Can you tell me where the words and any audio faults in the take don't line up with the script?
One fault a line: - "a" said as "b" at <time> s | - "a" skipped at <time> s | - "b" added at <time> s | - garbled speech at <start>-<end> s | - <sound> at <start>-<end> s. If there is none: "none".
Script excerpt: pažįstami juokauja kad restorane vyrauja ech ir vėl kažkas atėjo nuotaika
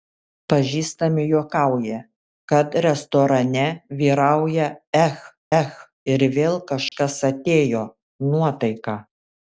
- "ech" added at 5.6 s
- dropout at 6.9-6.9 s